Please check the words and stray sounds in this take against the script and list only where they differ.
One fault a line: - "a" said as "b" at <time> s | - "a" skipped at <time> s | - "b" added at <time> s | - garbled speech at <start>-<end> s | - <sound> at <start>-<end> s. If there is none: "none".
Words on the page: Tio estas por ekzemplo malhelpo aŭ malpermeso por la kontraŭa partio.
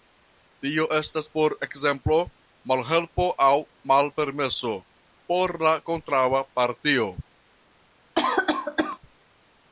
- cough at 8.1-9.0 s